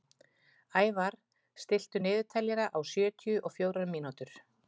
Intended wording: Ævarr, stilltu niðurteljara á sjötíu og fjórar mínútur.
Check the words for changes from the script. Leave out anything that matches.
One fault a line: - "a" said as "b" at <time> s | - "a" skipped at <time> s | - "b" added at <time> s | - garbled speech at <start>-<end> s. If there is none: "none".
none